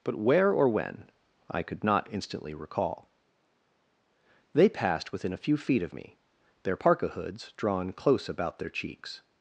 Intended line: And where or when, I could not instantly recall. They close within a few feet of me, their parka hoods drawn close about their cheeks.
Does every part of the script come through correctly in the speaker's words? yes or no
no